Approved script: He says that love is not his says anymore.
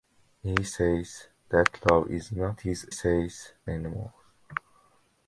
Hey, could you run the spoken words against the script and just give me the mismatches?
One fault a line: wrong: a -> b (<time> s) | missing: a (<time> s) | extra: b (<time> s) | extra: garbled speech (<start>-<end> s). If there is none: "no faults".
no faults